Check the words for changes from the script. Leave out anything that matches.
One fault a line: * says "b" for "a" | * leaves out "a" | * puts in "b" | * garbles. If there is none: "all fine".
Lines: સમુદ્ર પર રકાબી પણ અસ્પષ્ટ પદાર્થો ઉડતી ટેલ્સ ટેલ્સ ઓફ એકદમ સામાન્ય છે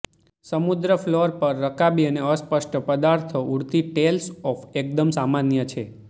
* puts in "ફ્લોર"
* says "અને" for "પણ"
* leaves out "ટેલ્સ"